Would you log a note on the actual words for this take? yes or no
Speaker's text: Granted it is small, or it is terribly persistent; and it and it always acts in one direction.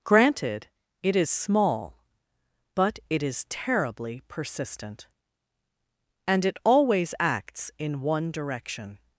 yes